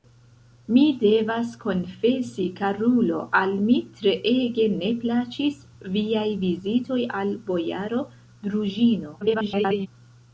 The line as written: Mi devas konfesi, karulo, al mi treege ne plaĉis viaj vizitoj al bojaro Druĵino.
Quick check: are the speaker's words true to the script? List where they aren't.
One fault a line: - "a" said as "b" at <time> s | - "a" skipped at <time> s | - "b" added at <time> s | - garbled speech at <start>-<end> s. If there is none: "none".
- garbled speech at 9.2-9.9 s